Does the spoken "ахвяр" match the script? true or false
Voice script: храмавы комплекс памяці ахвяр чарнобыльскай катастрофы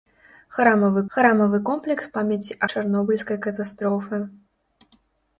false